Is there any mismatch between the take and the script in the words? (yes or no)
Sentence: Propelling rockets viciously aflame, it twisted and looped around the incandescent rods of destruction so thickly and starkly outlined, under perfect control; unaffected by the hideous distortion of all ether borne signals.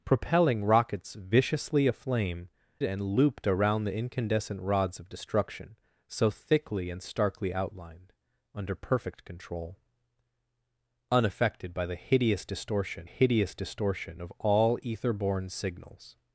yes